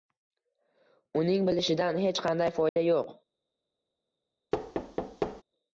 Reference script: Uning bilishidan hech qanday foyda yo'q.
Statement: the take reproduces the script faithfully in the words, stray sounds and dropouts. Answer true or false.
false